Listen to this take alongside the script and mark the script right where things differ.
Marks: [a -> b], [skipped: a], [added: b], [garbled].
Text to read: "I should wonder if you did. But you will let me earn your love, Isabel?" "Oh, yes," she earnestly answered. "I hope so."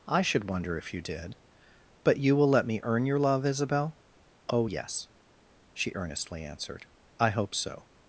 "I should wonder if you did. But you will let me earn your love, Isabel?" "Oh, yes," she earnestly answered. "I hope so."